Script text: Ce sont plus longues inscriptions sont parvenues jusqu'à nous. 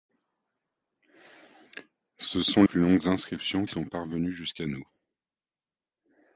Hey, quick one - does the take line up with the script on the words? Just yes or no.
yes